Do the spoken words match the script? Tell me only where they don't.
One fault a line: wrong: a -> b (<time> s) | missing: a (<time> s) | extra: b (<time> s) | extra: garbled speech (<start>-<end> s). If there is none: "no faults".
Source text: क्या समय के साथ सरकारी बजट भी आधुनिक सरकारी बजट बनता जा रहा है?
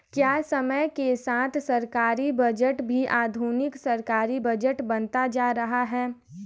no faults